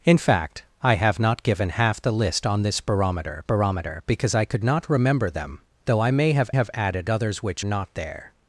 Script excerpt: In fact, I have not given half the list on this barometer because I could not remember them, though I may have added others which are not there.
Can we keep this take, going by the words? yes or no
no